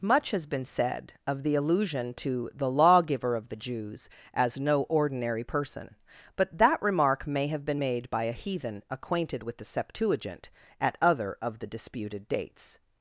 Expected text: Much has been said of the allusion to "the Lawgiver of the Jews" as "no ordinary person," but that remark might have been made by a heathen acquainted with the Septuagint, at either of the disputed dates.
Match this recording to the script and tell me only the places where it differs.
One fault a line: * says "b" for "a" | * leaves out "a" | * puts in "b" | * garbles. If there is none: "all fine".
* says "may" for "might"
* says "other" for "either"